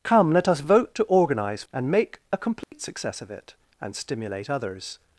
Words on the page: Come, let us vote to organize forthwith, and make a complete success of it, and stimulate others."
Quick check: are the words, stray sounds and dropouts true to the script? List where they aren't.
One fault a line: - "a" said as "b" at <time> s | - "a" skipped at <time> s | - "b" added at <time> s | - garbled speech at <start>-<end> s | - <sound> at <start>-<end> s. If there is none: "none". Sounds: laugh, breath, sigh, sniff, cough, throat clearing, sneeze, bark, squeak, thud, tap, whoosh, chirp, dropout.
- "forthwith" skipped at 1.6 s
- dropout at 2.6-2.7 s